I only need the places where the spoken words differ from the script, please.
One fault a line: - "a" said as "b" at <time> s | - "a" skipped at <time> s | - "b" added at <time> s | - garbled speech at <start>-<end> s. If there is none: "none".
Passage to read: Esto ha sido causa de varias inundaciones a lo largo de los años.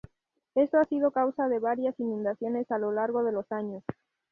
none